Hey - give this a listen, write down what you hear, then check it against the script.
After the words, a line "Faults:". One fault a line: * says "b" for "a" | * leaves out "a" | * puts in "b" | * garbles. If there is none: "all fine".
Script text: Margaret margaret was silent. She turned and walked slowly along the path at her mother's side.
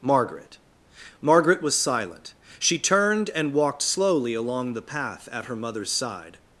Margaret margaret was silent. She turned and walked slowly along the path at her mother's side.
Faults:
all fine